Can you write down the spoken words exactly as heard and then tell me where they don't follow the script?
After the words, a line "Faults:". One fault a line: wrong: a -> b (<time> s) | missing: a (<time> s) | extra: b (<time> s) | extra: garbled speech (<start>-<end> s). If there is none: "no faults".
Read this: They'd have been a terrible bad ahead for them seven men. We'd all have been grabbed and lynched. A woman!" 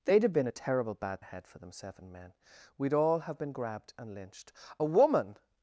They'd have been a terrible bad ahead for them seven men. We'd all have been grabbed and lynched. A woman!"
Faults:
no faults